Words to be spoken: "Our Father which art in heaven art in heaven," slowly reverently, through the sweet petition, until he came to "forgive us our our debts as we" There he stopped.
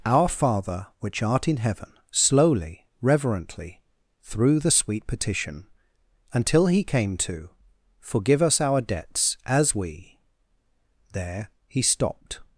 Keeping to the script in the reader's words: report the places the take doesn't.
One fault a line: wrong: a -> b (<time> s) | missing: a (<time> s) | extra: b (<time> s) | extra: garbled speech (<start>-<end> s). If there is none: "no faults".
missing: art in heaven (1.9 s)
missing: our (8.8 s)